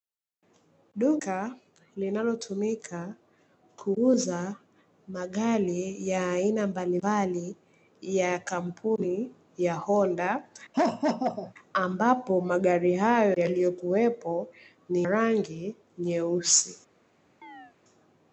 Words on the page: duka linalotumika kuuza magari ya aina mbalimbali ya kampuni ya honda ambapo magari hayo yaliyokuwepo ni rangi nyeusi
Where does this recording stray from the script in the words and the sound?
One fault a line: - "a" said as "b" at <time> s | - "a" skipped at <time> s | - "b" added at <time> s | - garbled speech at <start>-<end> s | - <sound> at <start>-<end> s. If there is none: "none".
- laugh at 10.7-11.5 s
- chirp at 17.4-17.7 s